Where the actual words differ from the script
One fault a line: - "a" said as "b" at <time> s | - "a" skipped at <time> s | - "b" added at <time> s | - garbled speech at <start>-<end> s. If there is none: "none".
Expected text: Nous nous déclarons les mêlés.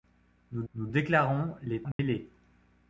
none